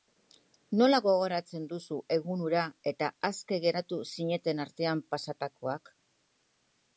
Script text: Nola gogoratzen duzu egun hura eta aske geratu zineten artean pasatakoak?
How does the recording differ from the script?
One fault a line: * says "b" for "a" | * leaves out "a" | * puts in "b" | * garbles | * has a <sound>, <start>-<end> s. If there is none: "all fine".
all fine